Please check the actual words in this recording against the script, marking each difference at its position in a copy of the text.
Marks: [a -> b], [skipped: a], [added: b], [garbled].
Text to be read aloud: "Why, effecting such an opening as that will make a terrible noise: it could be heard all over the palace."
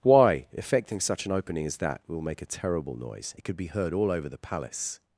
"Why, effecting such an opening as that will make a terrible noise: it could be heard all over the palace."